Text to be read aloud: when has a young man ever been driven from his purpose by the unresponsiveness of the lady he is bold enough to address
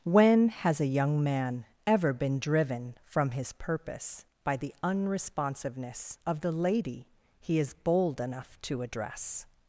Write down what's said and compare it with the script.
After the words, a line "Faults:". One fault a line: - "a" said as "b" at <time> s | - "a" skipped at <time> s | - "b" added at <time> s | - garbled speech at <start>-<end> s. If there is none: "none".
when has a young man ever been driven from his purpose by the unresponsiveness of the lady he is bold enough to address
Faults:
none